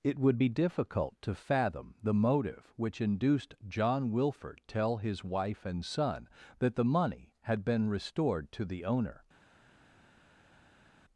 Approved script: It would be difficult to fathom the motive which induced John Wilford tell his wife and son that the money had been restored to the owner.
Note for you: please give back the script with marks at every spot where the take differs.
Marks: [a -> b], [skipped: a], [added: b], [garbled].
It would be difficult to fathom the motive which induced John Wilford tell his wife and son that the money had been restored to the owner.